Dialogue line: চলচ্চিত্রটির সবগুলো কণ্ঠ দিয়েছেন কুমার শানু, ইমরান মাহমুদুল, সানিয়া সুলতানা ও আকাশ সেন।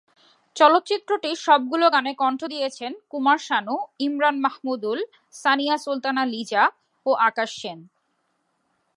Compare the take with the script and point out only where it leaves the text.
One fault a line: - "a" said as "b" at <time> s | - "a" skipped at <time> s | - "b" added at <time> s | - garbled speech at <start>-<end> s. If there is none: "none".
- "গানে" added at 1.9 s
- "লিজা" added at 6.3 s